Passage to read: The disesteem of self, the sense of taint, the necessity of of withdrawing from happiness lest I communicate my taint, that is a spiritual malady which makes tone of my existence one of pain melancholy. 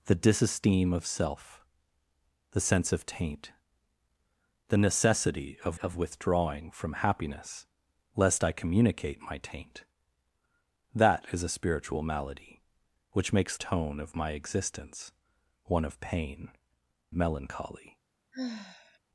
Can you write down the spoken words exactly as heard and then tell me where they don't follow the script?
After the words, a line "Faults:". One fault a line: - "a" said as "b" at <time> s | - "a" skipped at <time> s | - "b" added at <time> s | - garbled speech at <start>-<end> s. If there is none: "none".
The disesteem of self, the sense of taint, the necessity of of withdrawing from happiness lest I communicate my taint, that is a spiritual malady which makes tone of my existence one of pain melancholy.
Faults:
none